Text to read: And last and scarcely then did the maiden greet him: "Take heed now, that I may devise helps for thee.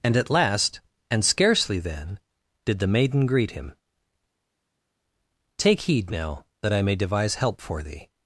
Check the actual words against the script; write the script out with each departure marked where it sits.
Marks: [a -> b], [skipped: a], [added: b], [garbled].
And [added: at] last and scarcely then did the maiden greet him: "Take heed now, that I may devise [helps -> help] for thee.